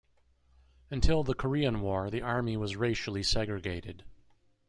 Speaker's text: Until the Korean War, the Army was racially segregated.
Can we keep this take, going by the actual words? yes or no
yes